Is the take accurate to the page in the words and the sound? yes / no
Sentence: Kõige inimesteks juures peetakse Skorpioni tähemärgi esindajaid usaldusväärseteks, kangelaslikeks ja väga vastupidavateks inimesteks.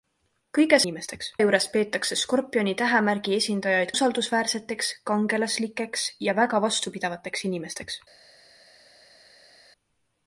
yes